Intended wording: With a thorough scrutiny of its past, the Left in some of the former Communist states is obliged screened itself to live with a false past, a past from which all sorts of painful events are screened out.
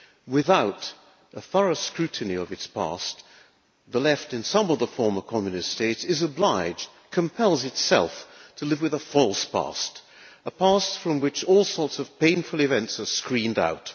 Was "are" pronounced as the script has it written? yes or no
yes